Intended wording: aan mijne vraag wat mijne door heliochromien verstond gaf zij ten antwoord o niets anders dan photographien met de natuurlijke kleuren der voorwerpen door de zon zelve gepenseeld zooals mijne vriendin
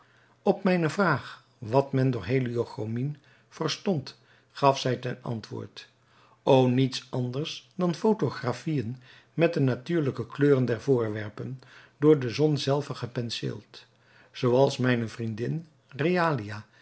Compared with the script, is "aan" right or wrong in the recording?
wrong